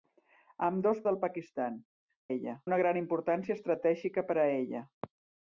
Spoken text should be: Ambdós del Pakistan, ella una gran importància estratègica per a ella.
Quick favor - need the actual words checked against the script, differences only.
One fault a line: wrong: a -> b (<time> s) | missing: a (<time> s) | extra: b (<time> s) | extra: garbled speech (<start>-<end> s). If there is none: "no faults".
no faults